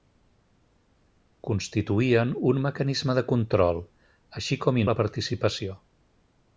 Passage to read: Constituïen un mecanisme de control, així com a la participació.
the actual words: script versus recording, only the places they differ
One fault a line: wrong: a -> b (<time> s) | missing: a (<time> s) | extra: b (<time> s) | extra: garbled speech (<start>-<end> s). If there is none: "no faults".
no faults